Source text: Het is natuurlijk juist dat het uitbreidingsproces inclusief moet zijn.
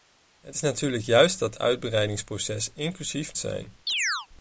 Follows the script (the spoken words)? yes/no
no